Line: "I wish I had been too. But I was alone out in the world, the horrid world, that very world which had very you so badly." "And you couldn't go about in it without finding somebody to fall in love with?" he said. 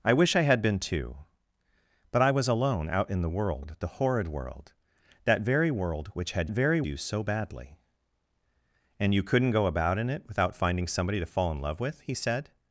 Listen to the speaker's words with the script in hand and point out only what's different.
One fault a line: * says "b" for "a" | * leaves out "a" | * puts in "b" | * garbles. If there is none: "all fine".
all fine